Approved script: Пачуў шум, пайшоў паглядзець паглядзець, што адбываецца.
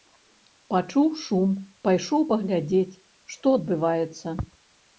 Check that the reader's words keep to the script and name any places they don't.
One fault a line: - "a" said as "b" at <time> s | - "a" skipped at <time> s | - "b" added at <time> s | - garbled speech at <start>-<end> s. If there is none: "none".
- "паглядзець" skipped at 3.0 s